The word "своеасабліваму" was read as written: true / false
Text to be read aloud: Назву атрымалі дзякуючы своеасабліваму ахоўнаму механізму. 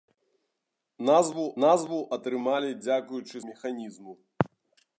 false